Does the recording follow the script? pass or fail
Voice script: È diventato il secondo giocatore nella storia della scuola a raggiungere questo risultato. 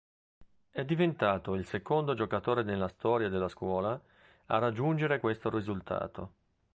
pass